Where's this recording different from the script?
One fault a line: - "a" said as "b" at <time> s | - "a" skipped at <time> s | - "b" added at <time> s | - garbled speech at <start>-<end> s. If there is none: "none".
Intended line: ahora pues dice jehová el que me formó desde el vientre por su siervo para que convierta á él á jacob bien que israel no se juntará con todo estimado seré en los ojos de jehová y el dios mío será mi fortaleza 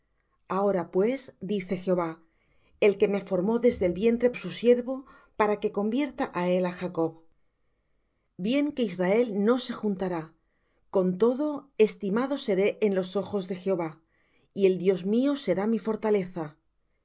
- "por" skipped at 4.3 s